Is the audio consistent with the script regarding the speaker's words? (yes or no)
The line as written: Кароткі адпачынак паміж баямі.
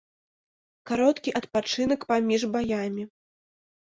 yes